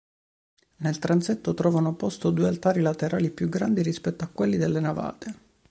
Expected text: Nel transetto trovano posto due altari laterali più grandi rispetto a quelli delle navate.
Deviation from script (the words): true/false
false